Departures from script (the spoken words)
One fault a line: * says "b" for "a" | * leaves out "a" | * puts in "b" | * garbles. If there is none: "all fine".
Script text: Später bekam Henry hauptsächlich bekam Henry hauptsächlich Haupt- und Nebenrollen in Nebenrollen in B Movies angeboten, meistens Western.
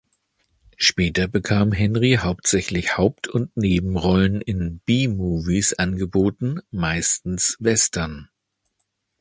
* leaves out "bekam Henry hauptsächlich"
* leaves out "Nebenrollen in"